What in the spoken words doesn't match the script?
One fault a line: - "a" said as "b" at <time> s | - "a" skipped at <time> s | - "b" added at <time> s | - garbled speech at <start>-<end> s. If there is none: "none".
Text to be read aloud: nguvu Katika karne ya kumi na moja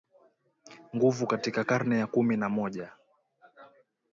none